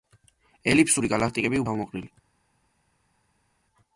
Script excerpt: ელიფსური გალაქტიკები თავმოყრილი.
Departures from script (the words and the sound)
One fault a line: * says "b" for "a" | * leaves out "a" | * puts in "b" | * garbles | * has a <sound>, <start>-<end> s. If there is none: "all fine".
all fine